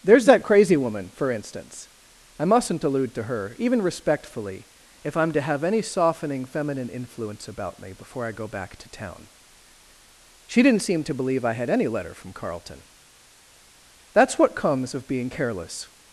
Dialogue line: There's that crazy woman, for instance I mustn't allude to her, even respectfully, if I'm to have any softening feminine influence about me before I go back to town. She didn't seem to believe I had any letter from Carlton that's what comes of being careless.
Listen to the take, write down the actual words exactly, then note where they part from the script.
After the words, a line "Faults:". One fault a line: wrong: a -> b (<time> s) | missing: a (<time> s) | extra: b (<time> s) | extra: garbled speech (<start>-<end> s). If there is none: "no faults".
There's that crazy woman, for instance I mustn't allude to her, even respectfully, if I'm to have any softening feminine influence about me before I go back to town. She didn't seem to believe I had any letter from Carlton that's what comes of being careless.
Faults:
no faults